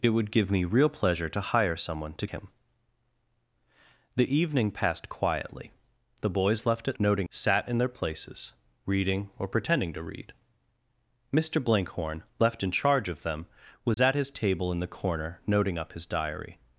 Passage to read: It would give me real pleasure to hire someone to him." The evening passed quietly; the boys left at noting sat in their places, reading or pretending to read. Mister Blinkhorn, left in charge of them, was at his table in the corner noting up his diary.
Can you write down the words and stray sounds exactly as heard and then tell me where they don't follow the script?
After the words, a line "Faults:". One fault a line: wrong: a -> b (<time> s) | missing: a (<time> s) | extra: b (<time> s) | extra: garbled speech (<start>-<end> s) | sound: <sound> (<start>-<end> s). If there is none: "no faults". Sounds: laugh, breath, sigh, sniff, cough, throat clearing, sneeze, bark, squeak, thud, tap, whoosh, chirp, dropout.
It would give me real pleasure to hire someone to him." The evening passed quietly; the boys left at noting sat in their places, reading or pretending to read. Mister Blinkhorn, left in charge of them, was at his table in the corner noting up his diary.
Faults:
sound: dropout (13.9-14.0 s)